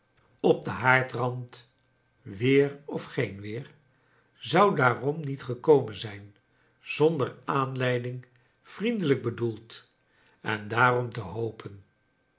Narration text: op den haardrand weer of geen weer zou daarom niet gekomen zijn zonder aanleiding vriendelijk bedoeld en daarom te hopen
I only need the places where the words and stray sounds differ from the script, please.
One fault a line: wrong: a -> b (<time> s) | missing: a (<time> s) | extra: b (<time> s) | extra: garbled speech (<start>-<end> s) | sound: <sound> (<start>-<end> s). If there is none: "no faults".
no faults